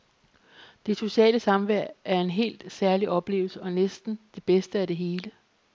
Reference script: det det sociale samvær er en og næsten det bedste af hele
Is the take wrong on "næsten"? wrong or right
right